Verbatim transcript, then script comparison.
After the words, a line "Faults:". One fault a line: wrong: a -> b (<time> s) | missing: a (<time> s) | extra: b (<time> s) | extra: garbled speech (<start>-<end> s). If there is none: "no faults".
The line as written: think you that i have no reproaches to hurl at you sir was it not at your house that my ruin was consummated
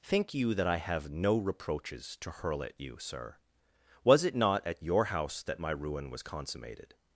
think you that i have no reproaches to hurl at you sir was it not at your house that my ruin was consummated
Faults:
no faults